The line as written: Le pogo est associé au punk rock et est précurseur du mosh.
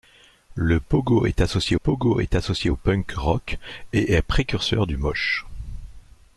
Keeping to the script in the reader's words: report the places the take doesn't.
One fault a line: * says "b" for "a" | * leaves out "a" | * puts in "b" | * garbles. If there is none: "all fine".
* puts in "pogo est associé"